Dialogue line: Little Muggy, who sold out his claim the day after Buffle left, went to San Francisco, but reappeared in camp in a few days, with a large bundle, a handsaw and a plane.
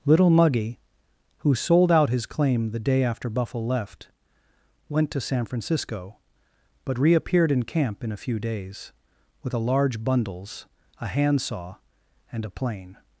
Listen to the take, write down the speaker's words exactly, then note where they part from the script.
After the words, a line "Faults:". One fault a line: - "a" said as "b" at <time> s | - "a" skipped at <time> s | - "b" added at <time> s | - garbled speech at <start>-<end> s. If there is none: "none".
Little Muggy, who sold out his claim the day after Buffle left, went to San Francisco, but reappeared in camp in a few days, with a large bundles, a handsaw and a plane.
Faults:
- "bundle" said as "bundles" at 10.0 s